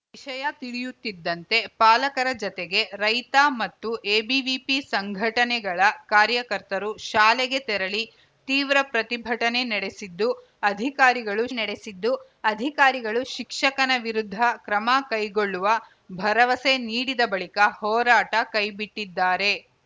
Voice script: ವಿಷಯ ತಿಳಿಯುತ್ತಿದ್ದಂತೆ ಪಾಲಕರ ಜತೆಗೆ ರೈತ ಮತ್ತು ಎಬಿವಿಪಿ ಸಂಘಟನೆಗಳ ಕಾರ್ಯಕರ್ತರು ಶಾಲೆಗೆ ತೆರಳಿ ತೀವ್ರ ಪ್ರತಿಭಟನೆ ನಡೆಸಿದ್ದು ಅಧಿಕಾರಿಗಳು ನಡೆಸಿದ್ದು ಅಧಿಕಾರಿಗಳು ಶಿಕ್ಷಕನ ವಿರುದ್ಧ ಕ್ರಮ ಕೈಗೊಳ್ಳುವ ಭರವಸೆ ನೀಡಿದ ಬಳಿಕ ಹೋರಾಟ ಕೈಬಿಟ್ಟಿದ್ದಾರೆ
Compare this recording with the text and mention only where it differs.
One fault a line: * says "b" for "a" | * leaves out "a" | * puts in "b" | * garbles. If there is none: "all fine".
all fine